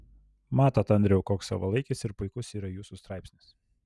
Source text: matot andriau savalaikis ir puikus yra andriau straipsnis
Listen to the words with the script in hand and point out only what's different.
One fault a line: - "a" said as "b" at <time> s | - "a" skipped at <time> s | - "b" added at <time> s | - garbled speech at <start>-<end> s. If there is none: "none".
- "koks" added at 1.3 s
- "andriau" said as "jūsų" at 2.8 s